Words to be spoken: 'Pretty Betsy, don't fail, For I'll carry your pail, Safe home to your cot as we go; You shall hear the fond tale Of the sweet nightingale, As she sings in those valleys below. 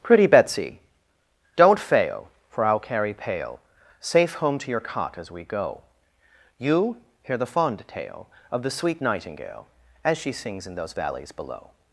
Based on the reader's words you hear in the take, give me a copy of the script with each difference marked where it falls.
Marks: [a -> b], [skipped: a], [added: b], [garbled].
'Pretty Betsy, don't fail, For I'll carry [skipped: your] pail, Safe home to your cot as we go; You [skipped: shall] hear the fond tale Of the sweet nightingale, As she sings in those valleys below.